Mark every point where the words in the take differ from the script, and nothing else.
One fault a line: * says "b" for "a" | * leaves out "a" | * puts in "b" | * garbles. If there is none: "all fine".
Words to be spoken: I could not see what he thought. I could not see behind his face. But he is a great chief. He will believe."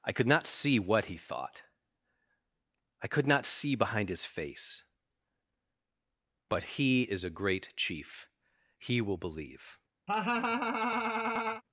all fine